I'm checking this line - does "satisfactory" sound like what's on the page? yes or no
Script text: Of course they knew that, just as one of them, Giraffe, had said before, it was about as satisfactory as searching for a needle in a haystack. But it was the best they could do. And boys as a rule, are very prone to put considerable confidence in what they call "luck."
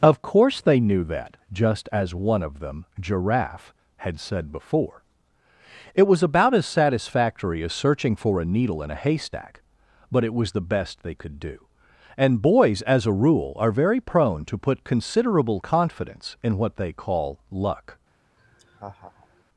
yes